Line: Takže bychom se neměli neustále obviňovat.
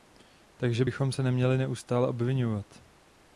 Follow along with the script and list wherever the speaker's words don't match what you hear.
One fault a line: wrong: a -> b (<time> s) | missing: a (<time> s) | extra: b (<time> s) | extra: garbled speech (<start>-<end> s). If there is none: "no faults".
no faults